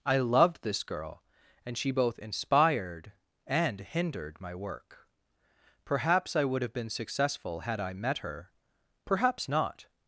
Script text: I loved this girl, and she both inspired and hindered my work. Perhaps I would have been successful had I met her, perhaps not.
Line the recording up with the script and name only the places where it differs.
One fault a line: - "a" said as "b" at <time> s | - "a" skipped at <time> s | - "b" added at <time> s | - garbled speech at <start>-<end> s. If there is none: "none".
none